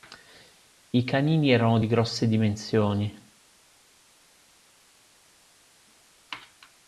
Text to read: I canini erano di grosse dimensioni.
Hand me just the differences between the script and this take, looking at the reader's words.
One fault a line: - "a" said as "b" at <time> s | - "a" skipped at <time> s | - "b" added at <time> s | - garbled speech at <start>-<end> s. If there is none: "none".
none